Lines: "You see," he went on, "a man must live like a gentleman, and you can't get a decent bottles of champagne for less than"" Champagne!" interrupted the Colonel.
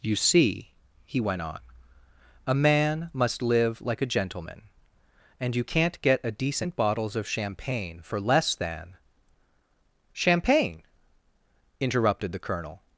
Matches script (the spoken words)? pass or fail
pass